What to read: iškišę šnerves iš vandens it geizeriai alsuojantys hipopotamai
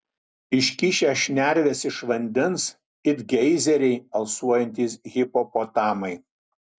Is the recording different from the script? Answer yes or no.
no